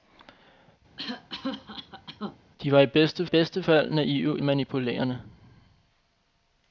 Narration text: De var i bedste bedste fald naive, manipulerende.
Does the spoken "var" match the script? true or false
true